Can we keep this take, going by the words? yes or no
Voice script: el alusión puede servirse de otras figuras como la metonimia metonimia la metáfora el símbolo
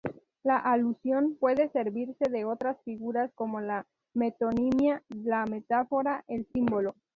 no